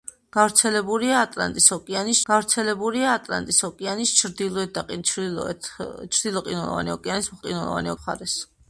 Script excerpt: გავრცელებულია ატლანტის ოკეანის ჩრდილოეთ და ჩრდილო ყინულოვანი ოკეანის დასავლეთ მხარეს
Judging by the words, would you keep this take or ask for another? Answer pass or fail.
fail